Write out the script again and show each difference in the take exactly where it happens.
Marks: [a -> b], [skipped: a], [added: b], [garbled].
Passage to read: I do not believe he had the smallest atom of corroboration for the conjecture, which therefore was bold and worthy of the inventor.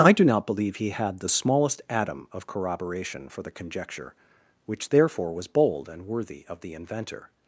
I do not believe he had the smallest atom of corroboration for the conjecture, which therefore was bold and worthy of the inventor.